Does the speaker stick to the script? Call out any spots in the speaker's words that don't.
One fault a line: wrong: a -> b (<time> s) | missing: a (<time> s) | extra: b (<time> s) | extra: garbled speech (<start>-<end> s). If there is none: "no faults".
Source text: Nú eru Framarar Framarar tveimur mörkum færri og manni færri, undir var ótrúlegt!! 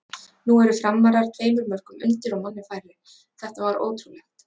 missing: Framarar (1.3 s)
wrong: færri -> undir (2.1 s)
wrong: undir -> þetta (3.4 s)